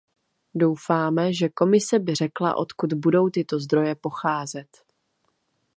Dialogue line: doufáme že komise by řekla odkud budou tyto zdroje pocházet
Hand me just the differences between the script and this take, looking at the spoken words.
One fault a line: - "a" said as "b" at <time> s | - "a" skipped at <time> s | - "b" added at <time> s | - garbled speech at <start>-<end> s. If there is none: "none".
none